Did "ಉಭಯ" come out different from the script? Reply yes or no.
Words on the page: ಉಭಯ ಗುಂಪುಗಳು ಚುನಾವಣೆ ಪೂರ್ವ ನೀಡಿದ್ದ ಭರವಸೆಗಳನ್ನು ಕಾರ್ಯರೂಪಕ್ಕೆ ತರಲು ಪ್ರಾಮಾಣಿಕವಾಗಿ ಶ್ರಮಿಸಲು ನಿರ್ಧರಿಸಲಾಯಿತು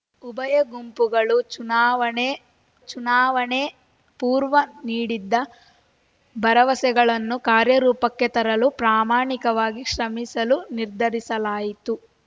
no